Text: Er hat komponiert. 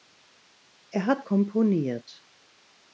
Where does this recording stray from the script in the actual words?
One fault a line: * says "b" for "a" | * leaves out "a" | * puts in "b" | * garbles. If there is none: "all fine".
all fine